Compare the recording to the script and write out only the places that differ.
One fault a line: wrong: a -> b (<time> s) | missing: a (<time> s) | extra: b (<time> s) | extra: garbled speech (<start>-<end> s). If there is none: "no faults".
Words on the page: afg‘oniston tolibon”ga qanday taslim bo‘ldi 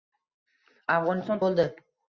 missing: tolibon”ga qanday taslim (1.4 s)